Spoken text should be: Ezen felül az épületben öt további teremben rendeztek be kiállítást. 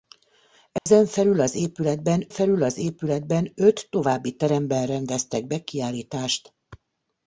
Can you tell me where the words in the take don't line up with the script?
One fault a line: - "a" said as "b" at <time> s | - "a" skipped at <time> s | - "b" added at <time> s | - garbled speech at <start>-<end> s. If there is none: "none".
- "felül az épületben" added at 2.3 s